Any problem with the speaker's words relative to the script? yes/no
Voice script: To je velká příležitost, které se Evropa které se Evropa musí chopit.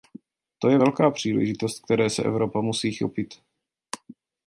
yes